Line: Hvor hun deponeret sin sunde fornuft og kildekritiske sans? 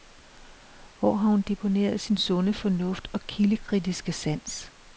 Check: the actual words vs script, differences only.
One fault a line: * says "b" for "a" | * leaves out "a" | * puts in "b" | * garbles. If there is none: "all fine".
* puts in "har"